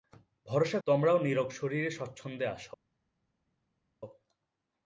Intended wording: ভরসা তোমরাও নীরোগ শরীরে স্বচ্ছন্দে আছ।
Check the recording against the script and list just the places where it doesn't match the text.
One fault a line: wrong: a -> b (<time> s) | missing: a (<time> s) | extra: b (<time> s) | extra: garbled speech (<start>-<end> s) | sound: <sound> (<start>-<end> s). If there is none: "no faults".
no faults